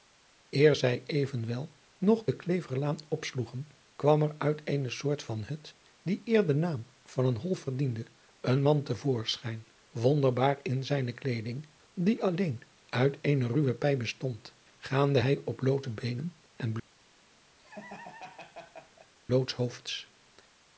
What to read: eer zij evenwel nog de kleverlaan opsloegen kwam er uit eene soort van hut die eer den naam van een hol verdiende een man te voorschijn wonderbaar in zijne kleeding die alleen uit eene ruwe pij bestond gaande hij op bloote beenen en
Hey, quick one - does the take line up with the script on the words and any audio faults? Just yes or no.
no